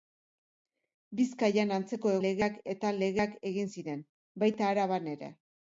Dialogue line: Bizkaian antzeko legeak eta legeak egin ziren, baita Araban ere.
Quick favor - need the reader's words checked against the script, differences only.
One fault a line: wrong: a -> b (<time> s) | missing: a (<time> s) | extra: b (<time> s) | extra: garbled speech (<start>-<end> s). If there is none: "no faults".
no faults